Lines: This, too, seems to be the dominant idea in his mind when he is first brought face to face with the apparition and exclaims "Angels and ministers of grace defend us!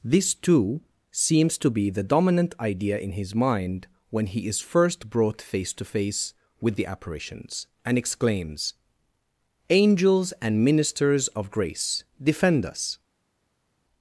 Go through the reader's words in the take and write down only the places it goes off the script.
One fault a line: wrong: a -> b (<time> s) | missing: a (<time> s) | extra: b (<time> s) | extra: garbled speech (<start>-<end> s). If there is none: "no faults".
wrong: apparition -> apparitions (6.9 s)